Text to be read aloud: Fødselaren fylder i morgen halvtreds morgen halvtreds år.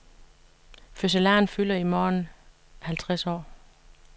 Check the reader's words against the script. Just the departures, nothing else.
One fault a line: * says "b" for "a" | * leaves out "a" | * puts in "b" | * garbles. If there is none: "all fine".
* leaves out "morgen halvtreds"